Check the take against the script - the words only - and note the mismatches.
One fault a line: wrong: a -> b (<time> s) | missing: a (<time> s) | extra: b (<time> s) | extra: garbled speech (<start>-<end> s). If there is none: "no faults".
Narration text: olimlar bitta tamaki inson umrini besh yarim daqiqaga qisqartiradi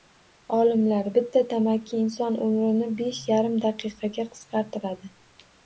no faults